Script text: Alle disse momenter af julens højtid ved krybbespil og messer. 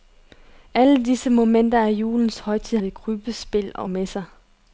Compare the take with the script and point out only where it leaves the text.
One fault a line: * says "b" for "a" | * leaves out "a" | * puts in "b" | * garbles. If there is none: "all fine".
all fine